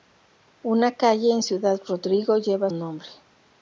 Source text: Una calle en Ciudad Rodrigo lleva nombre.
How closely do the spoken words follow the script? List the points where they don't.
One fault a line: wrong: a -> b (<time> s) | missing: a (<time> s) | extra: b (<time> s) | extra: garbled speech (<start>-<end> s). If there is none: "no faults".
no faults